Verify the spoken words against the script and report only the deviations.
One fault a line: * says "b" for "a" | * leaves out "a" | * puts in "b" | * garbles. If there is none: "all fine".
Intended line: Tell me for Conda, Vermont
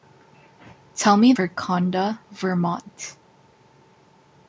all fine